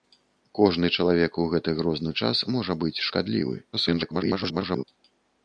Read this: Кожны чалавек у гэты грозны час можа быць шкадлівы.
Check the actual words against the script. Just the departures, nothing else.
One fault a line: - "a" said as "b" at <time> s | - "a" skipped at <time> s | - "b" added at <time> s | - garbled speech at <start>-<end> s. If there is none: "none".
- garbled speech at 3.7-4.8 s